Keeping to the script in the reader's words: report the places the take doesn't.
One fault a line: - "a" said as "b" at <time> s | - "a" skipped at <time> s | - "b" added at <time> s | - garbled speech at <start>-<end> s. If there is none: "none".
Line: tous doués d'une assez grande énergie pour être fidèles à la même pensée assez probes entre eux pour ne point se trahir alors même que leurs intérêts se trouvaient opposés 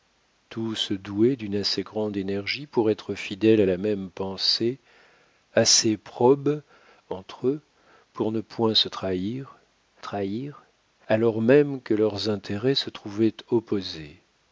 - "trahir" added at 10.0 s